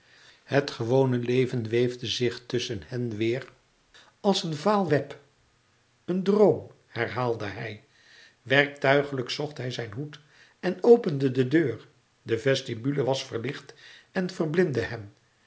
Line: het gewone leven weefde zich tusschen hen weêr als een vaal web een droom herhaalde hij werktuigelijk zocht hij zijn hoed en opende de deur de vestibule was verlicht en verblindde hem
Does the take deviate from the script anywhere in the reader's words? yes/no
no